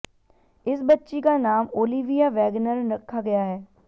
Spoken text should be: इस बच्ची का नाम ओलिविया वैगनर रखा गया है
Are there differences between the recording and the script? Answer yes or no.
no